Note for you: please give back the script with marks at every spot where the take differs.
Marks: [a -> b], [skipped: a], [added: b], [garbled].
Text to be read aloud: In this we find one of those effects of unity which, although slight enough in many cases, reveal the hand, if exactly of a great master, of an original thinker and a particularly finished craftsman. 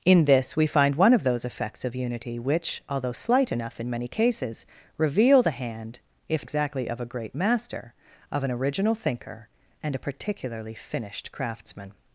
In this we find one of those effects of unity which, although slight enough in many cases, reveal the hand, if exactly of a great master, of an original thinker and a particularly finished craftsman.